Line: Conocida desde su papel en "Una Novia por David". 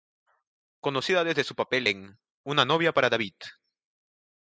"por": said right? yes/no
no